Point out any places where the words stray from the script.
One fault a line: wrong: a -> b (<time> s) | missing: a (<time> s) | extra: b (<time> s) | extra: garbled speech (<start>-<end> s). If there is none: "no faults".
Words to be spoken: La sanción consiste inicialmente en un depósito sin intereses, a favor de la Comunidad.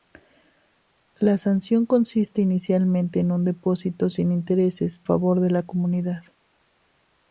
missing: a (5.0 s)